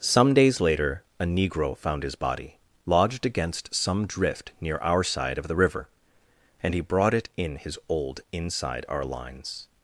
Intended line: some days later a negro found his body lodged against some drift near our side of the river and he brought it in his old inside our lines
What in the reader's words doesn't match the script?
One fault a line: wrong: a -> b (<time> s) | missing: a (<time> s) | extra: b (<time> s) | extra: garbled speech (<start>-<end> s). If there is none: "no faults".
no faults